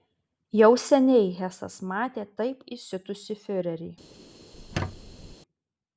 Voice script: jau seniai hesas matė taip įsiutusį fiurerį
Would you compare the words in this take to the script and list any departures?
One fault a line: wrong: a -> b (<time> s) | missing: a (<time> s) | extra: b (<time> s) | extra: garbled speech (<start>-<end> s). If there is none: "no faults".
no faults